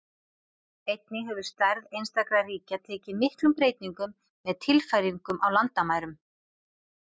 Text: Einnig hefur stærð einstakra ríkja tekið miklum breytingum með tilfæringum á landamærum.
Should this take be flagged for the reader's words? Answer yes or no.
no